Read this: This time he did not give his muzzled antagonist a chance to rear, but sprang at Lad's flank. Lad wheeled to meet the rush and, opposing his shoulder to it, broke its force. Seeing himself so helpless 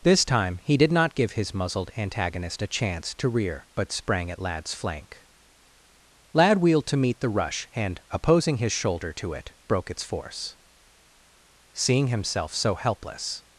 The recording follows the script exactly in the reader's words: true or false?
true